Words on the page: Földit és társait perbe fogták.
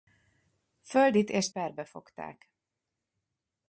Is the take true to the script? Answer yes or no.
no